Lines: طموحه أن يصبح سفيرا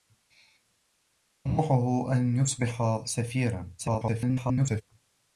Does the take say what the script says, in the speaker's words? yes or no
no